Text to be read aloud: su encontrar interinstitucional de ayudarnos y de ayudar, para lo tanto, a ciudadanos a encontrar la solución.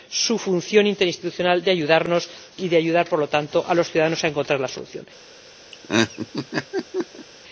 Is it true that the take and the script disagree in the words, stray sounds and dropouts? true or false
true